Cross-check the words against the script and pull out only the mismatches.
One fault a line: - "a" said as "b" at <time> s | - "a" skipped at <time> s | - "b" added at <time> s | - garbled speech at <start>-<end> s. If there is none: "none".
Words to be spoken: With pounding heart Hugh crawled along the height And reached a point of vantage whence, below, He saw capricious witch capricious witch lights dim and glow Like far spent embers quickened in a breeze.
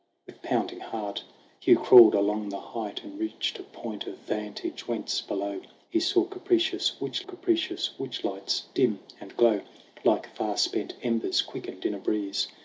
none